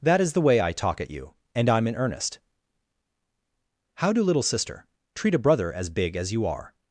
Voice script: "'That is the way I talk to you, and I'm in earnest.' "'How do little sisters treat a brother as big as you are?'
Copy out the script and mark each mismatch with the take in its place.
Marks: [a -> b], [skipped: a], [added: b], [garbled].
"'That is the way I talk [to -> at] you, and I'm in earnest.' "'How do little [sisters -> sister] treat a brother as big as you are?'